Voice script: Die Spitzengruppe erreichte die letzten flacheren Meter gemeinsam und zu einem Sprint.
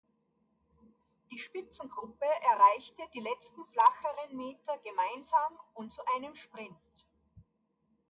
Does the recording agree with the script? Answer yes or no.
yes